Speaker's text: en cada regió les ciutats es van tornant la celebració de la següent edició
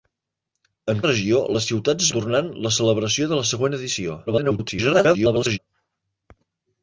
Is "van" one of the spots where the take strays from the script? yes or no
yes